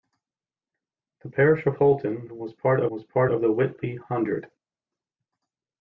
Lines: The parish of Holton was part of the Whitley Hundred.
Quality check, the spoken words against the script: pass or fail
fail